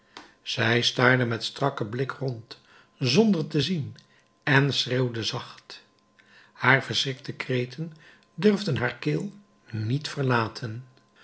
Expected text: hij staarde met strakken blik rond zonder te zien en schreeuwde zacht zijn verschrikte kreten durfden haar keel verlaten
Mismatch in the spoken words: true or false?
true